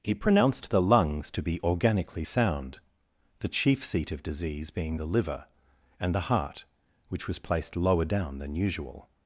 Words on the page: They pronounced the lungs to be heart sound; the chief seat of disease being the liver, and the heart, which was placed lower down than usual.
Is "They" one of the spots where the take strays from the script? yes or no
yes